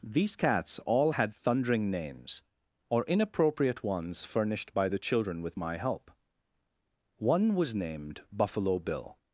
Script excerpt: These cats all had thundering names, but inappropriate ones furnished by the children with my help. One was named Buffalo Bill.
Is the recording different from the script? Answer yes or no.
yes